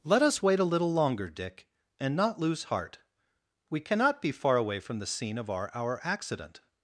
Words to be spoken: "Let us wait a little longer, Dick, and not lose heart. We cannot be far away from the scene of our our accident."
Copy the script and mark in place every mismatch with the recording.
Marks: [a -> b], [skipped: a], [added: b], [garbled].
"Let us wait a little longer, Dick, and not lose heart. We cannot be far away from the scene of our our accident."